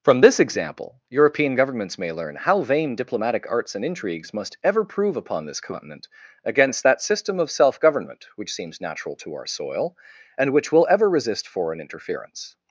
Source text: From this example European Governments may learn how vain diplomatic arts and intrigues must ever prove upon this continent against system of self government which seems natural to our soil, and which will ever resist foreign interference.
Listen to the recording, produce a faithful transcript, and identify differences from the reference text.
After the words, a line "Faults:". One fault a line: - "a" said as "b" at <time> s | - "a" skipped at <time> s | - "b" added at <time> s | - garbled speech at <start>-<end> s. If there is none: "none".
From this example European Governments may learn how vain diplomatic arts and intrigues must ever prove upon this continent against that system of self government which seems natural to our soil, and which will ever resist foreign interference.
Faults:
- "that" added at 6.8 s